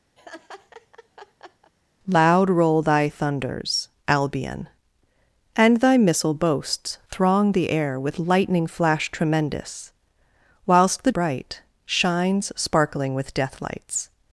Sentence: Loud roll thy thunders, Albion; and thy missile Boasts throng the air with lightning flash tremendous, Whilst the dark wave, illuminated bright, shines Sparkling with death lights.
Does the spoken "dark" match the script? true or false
false